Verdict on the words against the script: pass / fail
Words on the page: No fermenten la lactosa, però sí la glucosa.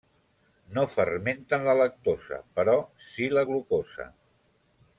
pass